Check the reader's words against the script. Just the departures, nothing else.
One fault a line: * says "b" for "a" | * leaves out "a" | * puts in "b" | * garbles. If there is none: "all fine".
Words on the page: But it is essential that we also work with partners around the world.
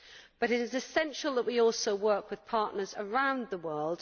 all fine